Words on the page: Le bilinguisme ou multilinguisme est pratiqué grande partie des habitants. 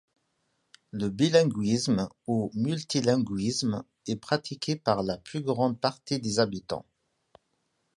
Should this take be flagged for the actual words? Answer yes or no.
yes